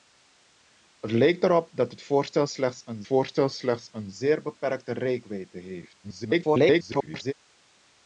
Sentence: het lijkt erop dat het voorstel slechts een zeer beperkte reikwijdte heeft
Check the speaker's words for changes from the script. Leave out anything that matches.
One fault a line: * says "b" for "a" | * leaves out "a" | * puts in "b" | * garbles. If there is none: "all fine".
* puts in "voorstel slechts een"
* garbles